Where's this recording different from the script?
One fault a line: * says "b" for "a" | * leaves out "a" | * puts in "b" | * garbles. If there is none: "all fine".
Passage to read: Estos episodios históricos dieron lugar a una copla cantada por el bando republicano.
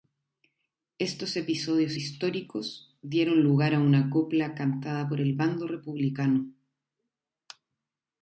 all fine